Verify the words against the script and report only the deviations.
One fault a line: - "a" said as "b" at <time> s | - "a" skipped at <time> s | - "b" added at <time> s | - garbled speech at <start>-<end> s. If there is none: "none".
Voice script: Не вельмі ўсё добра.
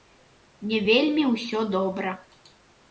none